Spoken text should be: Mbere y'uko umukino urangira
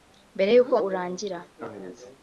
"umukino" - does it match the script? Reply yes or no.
no